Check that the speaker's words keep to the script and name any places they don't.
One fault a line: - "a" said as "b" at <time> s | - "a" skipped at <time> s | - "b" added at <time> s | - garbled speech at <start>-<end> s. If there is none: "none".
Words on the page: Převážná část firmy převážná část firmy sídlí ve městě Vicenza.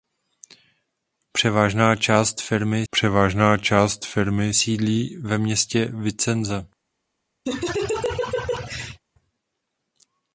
none